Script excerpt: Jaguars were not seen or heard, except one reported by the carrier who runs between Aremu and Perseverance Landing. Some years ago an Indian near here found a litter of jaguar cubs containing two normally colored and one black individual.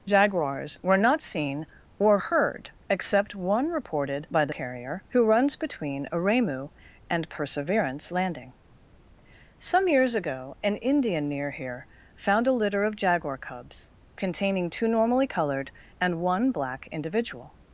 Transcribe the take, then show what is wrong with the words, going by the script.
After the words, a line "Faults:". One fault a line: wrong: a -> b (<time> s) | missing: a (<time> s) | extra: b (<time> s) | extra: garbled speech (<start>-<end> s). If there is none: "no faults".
Jaguars were not seen or heard, except one reported by the carrier who runs between Aremu and Perseverance Landing. Some years ago an Indian near here found a litter of jaguar cubs containing two normally colored and one black individual.
Faults:
no faults